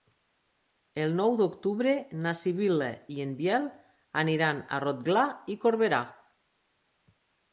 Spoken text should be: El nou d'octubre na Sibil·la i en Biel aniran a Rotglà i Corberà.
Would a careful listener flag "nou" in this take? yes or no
no